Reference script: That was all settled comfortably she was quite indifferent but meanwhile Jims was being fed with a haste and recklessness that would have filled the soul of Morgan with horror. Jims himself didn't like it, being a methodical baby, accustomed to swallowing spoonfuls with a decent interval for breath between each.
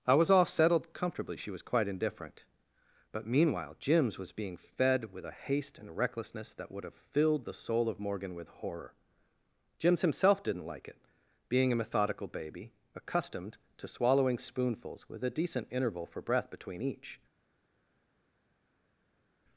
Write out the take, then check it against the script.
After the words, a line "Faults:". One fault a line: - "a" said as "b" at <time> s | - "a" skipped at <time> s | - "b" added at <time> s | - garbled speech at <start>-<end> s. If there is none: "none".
I was all settled comfortably she was quite indifferent but meanwhile Jims was being fed with a haste and recklessness that would have filled the soul of Morgan with horror. Jims himself didn't like it, being a methodical baby, accustomed to swallowing spoonfuls with a decent interval for breath between each.
Faults:
- "That" said as "I" at 0.1 s